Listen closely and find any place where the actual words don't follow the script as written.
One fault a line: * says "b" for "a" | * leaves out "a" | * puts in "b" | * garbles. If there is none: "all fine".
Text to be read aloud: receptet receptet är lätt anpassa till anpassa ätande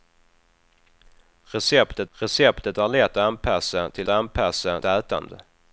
all fine